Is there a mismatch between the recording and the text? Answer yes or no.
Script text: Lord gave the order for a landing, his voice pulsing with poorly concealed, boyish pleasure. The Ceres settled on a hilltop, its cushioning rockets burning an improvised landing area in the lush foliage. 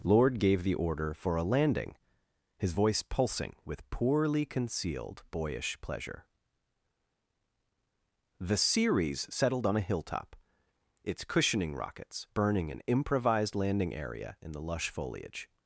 no